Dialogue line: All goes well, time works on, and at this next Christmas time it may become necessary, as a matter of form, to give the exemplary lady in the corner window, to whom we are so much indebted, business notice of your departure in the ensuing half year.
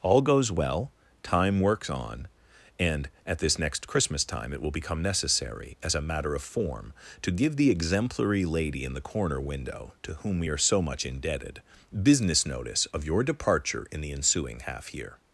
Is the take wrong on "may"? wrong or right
wrong